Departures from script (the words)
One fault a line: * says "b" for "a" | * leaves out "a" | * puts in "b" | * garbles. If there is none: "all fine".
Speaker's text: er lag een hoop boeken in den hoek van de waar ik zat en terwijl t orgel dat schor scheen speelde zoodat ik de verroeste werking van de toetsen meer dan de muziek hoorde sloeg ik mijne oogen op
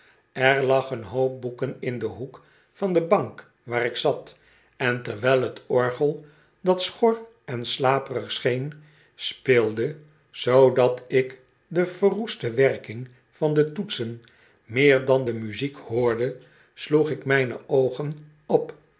* puts in "bank"
* puts in "en slaperig"